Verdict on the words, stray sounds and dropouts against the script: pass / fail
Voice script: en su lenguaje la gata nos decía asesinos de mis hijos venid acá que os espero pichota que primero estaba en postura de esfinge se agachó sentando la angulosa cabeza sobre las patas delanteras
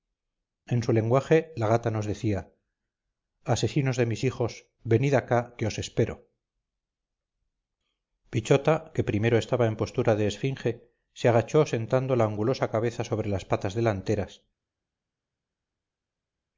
pass